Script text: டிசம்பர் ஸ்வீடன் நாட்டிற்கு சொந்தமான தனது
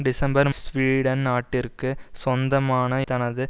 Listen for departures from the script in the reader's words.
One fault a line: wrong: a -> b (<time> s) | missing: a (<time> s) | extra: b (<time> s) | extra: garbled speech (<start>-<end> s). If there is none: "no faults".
no faults